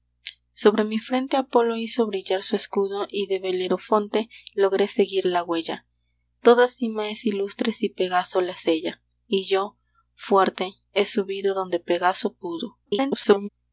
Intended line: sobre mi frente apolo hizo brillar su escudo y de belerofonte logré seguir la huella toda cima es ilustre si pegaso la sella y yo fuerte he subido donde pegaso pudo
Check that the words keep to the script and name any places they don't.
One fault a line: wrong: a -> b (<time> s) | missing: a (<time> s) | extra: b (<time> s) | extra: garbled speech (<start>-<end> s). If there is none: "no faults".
extra: garbled speech (12.9-13.5 s)